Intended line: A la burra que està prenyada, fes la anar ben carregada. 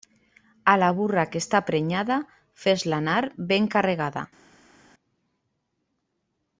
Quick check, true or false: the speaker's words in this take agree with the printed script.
true